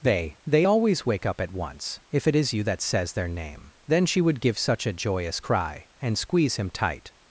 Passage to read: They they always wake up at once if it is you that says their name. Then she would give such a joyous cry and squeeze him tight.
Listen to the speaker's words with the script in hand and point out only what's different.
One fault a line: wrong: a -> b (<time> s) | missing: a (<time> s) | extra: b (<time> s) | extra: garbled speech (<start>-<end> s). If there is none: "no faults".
no faults